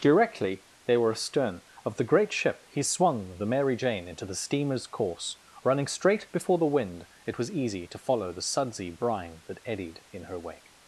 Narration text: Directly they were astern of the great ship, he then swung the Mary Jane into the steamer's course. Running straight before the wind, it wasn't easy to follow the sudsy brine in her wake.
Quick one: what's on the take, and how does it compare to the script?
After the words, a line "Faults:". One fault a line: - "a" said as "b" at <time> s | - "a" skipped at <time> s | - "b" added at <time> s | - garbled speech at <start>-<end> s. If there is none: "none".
Directly they were astern of the great ship, he swung the Mary Jane into the steamer's course. Running straight before the wind, it was easy to follow the sudsy brine that eddied in her wake.
Faults:
- "then" skipped at 2.8 s
- "wasn't" said as "was" at 7.4 s
- "that eddied" added at 9.5 s